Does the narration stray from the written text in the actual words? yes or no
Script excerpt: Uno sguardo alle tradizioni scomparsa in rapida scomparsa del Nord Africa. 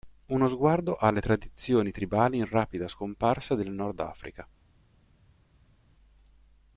yes